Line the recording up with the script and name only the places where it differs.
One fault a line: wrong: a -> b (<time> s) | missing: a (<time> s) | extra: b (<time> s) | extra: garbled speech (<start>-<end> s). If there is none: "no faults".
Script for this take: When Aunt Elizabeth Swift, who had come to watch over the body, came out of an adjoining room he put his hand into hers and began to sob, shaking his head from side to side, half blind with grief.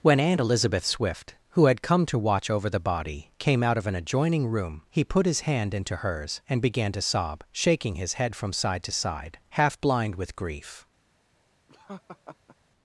no faults